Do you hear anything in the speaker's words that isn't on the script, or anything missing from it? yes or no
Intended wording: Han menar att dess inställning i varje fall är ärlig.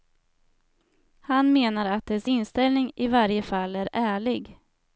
no